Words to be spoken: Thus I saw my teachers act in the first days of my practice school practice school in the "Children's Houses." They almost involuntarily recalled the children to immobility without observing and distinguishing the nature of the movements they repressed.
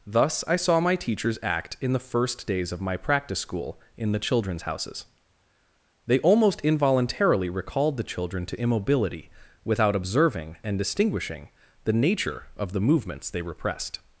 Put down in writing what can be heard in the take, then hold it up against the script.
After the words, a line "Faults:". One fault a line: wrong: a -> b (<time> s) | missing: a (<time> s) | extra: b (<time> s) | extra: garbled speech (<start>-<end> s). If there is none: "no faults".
Thus I saw my teachers act in the first days of my practice school in the "Children's Houses." They almost involuntarily recalled the children to immobility without observing and distinguishing the nature of the movements they repressed.
Faults:
missing: practice school (3.8 s)